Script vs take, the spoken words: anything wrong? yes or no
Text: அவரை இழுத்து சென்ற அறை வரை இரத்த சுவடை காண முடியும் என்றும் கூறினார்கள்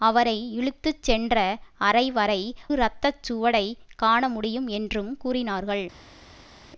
no